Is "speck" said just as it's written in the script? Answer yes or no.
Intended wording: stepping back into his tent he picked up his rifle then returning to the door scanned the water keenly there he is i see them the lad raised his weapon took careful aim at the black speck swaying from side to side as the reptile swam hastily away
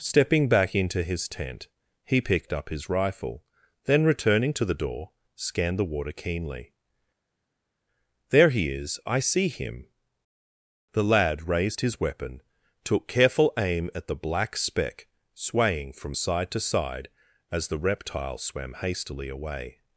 yes